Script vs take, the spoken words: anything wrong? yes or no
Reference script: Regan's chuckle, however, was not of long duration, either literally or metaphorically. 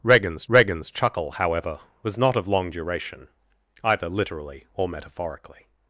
yes